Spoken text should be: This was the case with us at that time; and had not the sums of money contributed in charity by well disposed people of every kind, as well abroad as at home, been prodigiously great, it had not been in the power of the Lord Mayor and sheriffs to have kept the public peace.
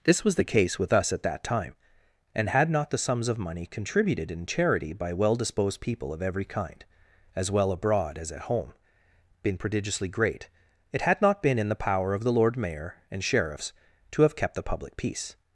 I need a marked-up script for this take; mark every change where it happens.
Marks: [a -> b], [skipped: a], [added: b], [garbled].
This was the case with us at that time; and had not the sums of money contributed in charity by well disposed people of every kind, as well abroad as at home, been prodigiously great, it had not been in the power of the Lord Mayor and sheriffs to have kept the public peace.